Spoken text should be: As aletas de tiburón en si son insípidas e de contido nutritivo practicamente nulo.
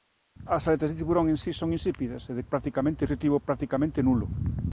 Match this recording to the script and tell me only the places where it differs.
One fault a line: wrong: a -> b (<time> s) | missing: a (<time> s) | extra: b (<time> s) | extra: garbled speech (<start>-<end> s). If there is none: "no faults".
wrong: contido -> practicamente (2.4 s)